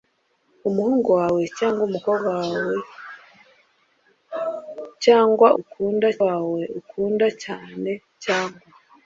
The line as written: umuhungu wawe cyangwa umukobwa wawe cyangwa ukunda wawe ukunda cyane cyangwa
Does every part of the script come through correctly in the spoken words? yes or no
yes